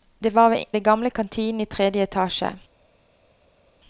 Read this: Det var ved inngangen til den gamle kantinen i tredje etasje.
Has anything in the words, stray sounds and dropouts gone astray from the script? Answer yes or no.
yes